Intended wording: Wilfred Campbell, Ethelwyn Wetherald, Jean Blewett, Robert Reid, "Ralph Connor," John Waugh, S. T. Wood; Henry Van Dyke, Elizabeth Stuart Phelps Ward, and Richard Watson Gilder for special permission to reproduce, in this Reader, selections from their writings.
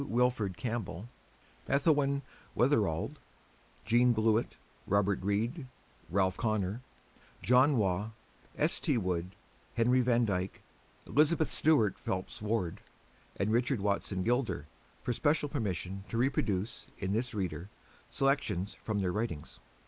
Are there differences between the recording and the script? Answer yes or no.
no